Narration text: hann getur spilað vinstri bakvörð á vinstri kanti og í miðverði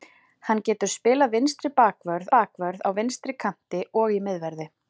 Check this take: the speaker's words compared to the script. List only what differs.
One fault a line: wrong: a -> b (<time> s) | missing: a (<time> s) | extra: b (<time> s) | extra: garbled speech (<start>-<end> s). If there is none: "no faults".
extra: bakvörð (2.4 s)